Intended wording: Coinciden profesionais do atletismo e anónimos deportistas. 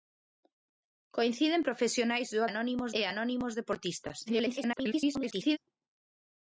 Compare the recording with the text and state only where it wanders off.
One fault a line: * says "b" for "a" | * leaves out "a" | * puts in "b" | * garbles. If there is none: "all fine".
* says "anónimos" for "atletismo"
* garbles